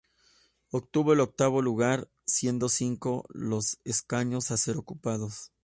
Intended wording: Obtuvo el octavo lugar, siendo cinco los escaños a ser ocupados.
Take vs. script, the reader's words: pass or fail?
pass